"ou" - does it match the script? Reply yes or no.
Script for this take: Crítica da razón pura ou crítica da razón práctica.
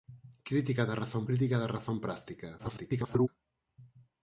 no